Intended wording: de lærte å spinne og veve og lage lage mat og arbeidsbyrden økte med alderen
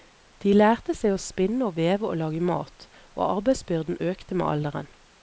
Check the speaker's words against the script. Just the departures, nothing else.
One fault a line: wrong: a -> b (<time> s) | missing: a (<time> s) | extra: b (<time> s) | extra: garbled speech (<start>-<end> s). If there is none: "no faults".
extra: seg (1.0 s)
missing: lage (2.4 s)